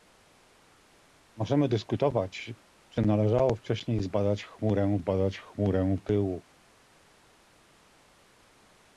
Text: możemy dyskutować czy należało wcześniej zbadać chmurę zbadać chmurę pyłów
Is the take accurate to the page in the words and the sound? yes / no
yes